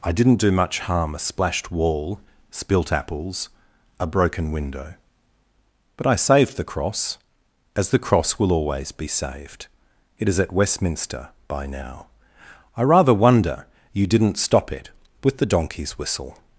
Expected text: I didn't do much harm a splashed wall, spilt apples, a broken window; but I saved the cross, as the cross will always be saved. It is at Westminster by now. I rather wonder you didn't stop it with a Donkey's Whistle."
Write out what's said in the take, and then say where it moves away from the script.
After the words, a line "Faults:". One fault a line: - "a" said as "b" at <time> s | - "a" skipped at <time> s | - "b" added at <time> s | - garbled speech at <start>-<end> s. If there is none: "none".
I didn't do much harm a splashed wall, spilt apples, a broken window; but I saved the cross, as the cross will always be saved. It is at Westminster by now. I rather wonder you didn't stop it with the Donkey's Whistle."
Faults:
- "a" said as "the" at 15.4 s